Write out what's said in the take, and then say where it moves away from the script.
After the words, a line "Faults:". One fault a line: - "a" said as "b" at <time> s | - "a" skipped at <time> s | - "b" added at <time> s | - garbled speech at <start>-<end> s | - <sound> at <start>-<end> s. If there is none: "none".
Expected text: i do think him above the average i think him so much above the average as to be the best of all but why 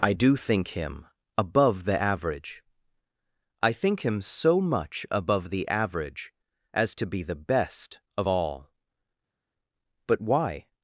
i do think him above the average i think him so much above the average as to be the best of all but why
Faults:
none